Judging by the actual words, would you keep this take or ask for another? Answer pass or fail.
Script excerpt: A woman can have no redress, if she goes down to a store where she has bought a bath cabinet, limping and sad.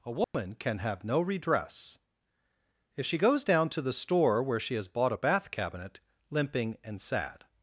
fail